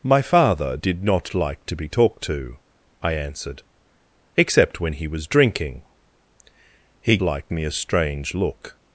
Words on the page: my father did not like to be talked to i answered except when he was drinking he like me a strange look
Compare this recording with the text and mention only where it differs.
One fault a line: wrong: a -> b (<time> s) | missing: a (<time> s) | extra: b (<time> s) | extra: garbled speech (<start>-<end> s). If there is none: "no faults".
no faults